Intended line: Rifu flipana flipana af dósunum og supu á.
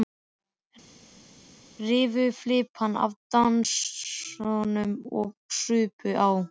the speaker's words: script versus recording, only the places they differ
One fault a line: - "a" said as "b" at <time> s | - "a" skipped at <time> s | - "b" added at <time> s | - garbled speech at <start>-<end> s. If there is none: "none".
- "flipana" skipped at 3.0 s